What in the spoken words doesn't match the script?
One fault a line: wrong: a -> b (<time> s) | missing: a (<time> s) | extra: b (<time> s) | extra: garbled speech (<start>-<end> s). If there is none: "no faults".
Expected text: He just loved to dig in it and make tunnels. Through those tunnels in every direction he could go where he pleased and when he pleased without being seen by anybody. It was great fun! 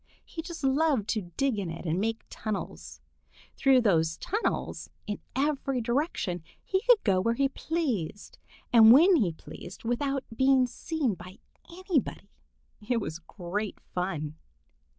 no faults